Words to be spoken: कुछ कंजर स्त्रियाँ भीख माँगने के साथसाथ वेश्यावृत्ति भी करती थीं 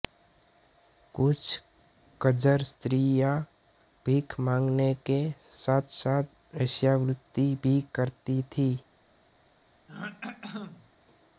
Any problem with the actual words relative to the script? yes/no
no